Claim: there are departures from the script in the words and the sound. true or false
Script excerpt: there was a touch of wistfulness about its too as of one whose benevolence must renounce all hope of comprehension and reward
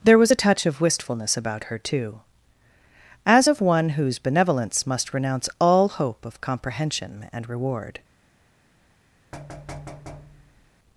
true